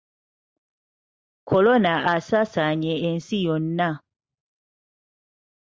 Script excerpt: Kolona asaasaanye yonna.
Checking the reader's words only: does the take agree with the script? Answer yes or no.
no